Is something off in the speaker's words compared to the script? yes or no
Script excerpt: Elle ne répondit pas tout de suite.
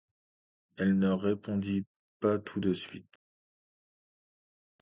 no